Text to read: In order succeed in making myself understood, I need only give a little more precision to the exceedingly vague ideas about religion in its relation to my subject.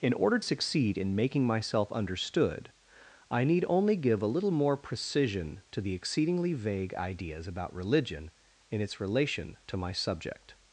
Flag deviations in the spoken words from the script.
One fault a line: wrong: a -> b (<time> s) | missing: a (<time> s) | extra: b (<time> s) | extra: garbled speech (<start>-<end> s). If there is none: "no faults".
no faults